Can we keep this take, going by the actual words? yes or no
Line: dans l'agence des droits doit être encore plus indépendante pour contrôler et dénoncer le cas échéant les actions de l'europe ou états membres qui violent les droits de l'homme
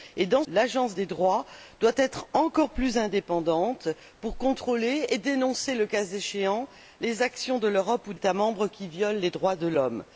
yes